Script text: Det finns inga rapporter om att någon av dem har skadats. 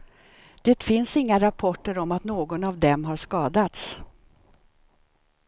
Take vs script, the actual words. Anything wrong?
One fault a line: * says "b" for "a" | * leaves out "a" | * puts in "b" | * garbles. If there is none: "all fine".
all fine